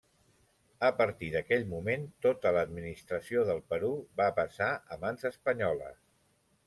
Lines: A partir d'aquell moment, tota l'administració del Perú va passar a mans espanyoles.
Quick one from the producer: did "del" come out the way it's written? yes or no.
yes